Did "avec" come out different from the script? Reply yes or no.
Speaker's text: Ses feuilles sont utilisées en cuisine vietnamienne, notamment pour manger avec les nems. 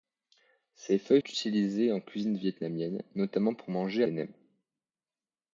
yes